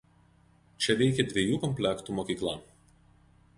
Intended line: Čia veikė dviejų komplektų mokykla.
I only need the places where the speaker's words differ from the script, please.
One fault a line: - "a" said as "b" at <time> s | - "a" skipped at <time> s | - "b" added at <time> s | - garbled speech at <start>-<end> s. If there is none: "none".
none